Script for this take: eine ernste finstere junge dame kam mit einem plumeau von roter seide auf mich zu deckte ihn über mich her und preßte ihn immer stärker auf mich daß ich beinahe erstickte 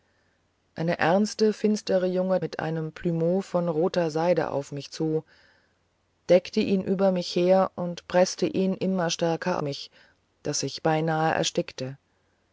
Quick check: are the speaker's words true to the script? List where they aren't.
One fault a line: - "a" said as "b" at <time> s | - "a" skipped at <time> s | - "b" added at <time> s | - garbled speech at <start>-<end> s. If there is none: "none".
- "dame kam" skipped at 2.4 s
- "auf" skipped at 9.6 s